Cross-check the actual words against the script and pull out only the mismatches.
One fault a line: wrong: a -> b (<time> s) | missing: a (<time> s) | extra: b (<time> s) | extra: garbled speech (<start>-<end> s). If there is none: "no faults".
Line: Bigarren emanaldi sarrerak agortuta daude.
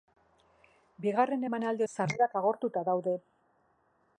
no faults